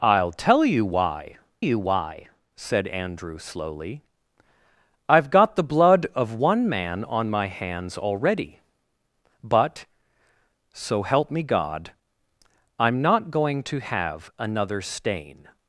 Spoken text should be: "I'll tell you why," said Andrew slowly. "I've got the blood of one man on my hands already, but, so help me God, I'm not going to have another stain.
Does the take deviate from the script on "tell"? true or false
false